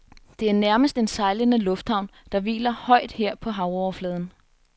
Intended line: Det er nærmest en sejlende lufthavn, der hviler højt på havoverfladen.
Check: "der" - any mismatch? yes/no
no